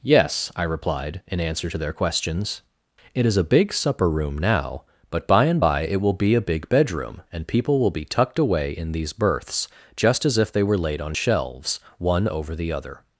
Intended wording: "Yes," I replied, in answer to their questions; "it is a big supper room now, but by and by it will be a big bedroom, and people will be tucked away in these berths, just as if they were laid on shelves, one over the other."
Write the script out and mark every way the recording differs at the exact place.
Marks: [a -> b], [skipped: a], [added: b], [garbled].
"Yes," I replied, in answer to their questions; "it is a big supper room now, but by and by it will be a big bedroom, and people will be tucked away in these berths, just as if they were laid on shelves, one over the other."